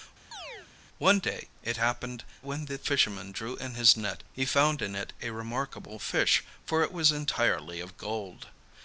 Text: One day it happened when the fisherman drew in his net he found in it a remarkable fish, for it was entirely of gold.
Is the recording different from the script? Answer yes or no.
no